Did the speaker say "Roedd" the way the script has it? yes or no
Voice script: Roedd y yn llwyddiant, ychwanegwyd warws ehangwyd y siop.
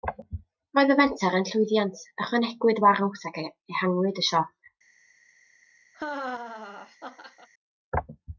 yes